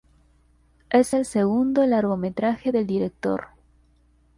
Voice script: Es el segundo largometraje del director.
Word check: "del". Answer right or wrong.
right